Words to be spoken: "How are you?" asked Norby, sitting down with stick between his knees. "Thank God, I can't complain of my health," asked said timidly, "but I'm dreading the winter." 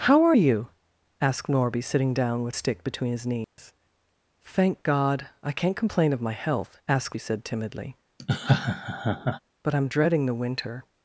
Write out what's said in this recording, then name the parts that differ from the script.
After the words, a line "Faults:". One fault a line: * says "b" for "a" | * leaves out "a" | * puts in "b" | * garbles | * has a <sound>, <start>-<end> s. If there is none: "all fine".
"How are you?" asked Norby, sitting down with stick between his knees. "Thank God, I can't complain of my health," asked said timidly, "but I'm dreading the winter."
Faults:
* has a dropout, 3.4-3.6 s
* has a laugh, 8.2-9.4 s